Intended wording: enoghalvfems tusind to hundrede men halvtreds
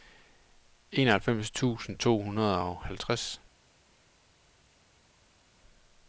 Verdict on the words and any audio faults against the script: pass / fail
fail